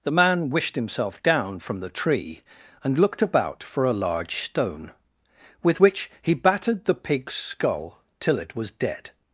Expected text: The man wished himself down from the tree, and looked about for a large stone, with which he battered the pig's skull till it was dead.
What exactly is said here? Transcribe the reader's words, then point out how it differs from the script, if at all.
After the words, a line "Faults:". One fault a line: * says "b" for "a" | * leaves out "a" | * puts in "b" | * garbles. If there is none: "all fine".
The man wished himself down from the tree, and looked about for a large stone, with which he battered the pig's skull till it was dead.
Faults:
all fine